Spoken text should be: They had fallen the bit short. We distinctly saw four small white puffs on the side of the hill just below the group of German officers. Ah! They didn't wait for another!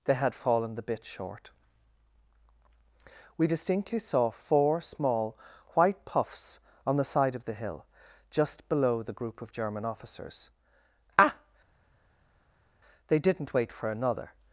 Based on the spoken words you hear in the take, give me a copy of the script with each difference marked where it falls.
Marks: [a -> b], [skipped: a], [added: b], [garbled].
They had fallen the bit short. We distinctly saw four small white puffs on the side of the hill just below the group of German officers. Ah! They didn't wait for another!